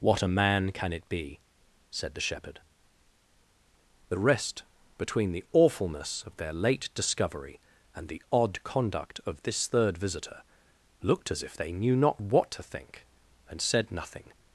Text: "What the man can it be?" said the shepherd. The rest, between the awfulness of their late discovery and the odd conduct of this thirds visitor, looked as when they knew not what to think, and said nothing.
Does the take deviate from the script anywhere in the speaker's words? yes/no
yes